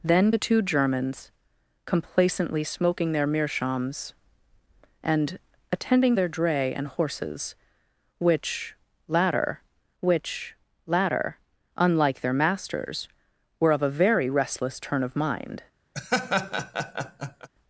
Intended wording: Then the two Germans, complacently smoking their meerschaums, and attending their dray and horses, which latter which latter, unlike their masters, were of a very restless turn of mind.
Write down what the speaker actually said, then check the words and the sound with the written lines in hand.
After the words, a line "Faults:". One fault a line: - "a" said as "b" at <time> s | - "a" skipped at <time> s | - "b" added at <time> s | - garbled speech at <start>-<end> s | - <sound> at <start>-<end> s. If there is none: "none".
Then the two Germans, complacently smoking their meerschaums, and attending their dray and horses, which latter which latter, unlike their masters, were of a very restless turn of mind.
Faults:
- laugh at 15.9-17.5 s